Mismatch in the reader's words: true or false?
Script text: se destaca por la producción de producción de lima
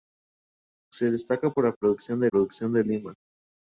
false